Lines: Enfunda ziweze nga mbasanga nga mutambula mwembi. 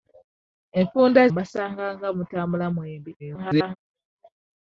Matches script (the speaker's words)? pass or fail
fail